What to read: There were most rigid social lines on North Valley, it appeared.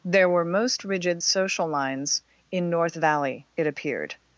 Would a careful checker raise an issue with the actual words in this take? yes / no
yes